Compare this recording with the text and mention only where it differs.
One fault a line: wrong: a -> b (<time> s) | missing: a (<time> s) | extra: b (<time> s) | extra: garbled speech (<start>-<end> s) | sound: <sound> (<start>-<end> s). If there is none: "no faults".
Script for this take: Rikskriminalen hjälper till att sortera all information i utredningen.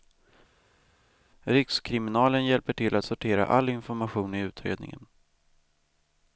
no faults